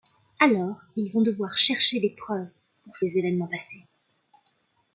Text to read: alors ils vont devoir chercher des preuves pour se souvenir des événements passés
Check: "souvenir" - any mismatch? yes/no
yes